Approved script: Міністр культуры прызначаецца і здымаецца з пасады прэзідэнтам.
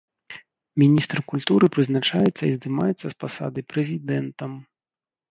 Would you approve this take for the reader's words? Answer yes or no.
yes